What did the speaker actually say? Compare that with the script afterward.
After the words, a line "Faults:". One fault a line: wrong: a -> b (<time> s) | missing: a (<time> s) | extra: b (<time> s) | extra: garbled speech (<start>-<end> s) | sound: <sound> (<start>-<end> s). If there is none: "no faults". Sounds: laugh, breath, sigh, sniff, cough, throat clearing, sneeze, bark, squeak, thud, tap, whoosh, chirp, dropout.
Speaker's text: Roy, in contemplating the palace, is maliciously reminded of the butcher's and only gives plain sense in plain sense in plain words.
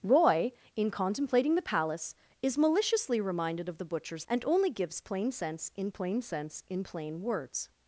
Roy, in contemplating the palace, is maliciously reminded of the butcher's and only gives plain sense in plain sense in plain words.
Faults:
no faults